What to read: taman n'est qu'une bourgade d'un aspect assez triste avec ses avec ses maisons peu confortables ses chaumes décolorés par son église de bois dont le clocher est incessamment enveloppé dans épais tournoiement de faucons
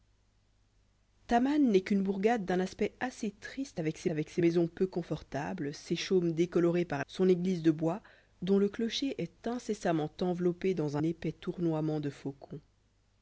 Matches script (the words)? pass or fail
pass